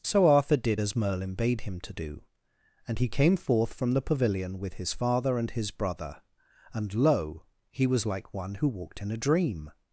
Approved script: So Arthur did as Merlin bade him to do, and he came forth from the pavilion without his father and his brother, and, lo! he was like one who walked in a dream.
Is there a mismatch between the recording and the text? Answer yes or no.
yes